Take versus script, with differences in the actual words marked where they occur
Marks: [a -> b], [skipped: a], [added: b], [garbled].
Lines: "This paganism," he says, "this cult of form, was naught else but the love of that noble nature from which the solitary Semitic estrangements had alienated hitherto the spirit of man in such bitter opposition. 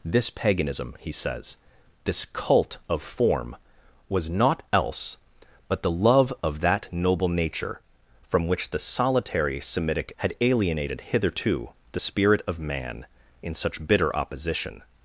"This paganism," he says, "this cult of form, was naught else but the love of that noble nature from which the solitary Semitic [skipped: estrangements] had alienated hitherto the spirit of man in such bitter opposition.